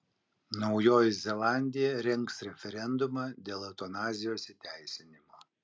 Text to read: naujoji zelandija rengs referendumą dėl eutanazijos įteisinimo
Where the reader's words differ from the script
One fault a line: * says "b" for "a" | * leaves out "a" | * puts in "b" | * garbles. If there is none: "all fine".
all fine